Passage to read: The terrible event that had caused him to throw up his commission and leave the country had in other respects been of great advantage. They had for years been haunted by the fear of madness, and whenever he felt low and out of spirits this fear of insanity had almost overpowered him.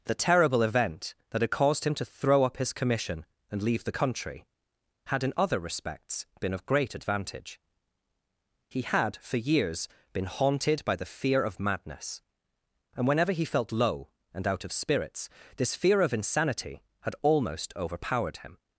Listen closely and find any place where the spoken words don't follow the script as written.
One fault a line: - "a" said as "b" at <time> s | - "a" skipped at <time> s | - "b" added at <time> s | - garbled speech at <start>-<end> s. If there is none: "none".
- "They" said as "He" at 8.7 s